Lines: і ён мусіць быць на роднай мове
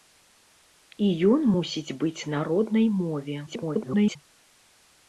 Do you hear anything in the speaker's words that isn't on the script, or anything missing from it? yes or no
yes